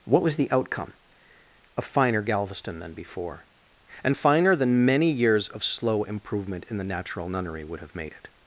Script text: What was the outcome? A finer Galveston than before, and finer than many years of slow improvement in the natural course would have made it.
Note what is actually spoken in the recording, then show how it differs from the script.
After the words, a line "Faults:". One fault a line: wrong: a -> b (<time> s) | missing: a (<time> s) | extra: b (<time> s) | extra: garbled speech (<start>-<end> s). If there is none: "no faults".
What was the outcome? A finer Galveston than before, and finer than many years of slow improvement in the natural nunnery would have made it.
Faults:
wrong: course -> nunnery (7.3 s)